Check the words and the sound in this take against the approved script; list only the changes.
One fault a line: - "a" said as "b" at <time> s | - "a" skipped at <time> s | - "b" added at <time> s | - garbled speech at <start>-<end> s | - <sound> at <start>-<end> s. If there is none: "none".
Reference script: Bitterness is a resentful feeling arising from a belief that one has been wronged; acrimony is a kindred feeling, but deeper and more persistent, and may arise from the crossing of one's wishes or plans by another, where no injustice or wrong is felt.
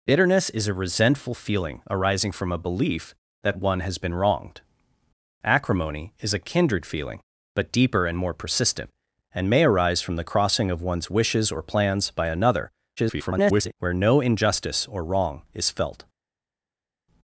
- garbled speech at 13.0-13.7 s